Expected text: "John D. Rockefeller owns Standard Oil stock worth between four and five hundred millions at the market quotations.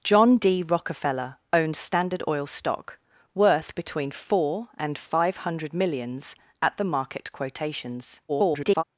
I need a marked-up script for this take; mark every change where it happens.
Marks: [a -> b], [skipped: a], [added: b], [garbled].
"John D. Rockefeller owns Standard Oil stock worth between four and five hundred millions at the market quotations. [garbled]